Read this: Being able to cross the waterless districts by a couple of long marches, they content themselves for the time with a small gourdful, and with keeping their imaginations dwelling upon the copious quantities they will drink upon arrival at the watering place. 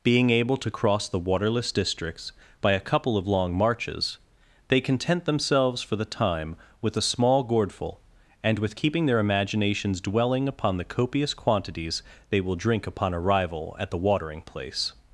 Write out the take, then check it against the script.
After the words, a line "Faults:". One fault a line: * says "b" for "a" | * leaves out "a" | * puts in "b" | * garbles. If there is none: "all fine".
Being able to cross the waterless districts by a couple of long marches, they content themselves for the time with a small gourdful, and with keeping their imaginations dwelling upon the copious quantities they will drink upon arrival at the watering place.
Faults:
all fine